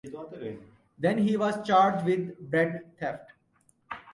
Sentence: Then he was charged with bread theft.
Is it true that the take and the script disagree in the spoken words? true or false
false